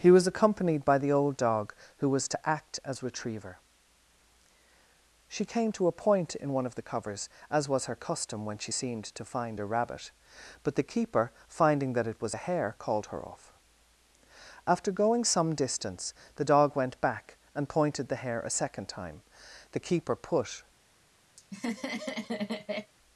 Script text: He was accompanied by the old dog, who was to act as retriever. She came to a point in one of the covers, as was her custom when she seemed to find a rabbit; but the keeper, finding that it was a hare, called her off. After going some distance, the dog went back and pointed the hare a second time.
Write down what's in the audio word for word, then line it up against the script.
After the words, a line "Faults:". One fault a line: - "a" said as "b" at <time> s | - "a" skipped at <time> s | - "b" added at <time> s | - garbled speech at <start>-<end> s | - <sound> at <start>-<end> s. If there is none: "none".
He was accompanied by the old dog, who was to act as retriever. She came to a point in one of the covers, as was her custom when she seemed to find a rabbit; but the keeper, finding that it was a hare, called her off. After going some distance, the dog went back and pointed the hare a second time. The keeper put
Faults:
- "The keeper put" added at 19.7 s
- laugh at 21.4-22.9 s